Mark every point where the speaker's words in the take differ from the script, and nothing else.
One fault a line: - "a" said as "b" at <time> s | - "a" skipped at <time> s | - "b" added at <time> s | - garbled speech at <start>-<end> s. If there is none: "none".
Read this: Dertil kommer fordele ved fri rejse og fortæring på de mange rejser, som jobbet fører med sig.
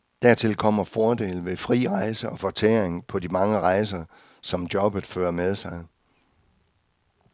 none